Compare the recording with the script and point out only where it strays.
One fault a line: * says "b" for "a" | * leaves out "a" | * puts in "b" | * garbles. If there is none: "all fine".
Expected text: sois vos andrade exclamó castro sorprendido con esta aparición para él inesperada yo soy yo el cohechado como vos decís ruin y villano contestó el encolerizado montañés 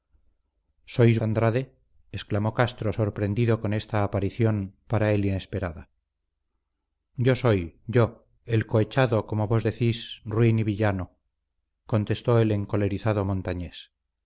* leaves out "vos"